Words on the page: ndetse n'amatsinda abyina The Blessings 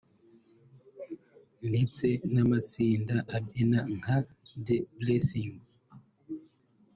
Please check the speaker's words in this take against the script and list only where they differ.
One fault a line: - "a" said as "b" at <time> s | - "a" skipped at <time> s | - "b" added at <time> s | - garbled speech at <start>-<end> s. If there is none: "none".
- "nka" added at 4.0 s